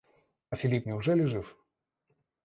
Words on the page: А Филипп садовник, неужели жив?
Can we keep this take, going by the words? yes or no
no